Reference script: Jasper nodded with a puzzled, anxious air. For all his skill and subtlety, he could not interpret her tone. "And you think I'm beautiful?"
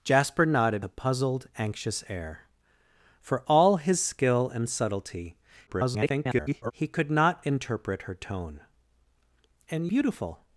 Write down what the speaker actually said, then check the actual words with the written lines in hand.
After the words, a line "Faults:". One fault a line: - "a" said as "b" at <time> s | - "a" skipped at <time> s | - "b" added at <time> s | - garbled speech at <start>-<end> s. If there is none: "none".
Jasper nodded a puzzled, anxious air. For all his skill and subtlety, [garbled] he could not interpret her tone. "And beautiful?"
Faults:
- "with" skipped at 0.8 s
- garbled speech at 5.7-6.7 s
- "you think I'm" skipped at 9.9 s